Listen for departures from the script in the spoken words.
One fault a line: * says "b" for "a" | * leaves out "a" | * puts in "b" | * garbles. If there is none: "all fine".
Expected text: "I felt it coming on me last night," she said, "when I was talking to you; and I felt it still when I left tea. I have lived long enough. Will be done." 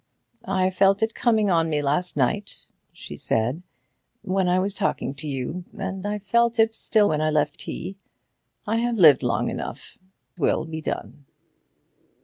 all fine